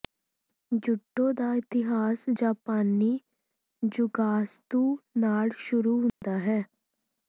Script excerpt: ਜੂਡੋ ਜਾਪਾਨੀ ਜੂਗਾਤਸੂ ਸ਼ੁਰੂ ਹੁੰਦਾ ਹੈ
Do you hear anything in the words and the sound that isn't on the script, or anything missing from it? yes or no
yes